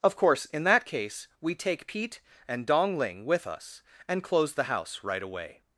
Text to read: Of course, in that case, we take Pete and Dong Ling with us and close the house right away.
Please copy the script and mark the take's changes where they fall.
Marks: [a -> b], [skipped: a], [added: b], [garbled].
Of course, in that case, we take Pete and Dong Ling with us and close the house right away.